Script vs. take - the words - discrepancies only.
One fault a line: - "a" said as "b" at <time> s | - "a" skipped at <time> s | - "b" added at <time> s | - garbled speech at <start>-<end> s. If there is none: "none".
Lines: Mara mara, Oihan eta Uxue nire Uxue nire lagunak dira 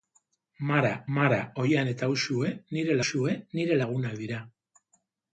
none